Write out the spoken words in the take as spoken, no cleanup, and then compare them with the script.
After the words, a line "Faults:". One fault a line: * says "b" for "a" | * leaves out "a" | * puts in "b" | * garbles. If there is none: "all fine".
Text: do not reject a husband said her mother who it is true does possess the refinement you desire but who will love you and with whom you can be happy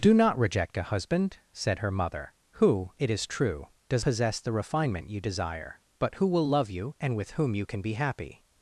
do not reject a husband said her mother who it is true does possess the refinement you desire but who will love you and with whom you can be happy
Faults:
all fine